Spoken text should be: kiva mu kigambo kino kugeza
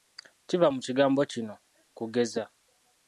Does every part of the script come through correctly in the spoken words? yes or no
yes